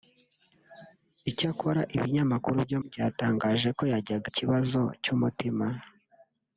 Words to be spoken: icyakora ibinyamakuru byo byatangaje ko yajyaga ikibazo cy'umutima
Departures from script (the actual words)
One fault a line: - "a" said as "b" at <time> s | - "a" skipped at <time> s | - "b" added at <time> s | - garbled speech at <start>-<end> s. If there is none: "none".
none